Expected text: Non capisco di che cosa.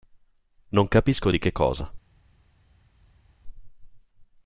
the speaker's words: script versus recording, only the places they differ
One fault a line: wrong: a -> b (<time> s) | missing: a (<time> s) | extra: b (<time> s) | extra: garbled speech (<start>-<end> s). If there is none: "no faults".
no faults